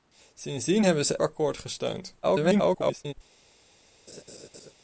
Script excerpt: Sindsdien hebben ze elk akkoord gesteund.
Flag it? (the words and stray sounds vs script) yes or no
yes